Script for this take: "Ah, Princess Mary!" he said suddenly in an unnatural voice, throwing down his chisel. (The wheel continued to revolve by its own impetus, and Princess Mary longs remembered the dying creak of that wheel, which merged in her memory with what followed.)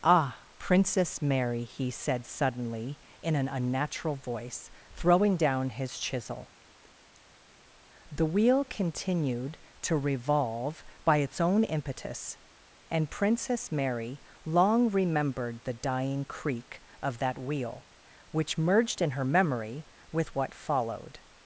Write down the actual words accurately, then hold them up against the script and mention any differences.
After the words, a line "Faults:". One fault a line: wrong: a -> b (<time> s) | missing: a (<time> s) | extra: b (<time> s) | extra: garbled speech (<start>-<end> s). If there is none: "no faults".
"Ah, Princess Mary!" he said suddenly in an unnatural voice, throwing down his chisel. (The wheel continued to revolve by its own impetus, and Princess Mary long remembered the dying creak of that wheel, which merged in her memory with what followed.)
Faults:
wrong: longs -> long (14.4 s)